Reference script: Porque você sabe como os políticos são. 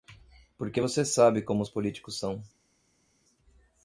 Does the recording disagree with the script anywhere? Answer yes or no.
no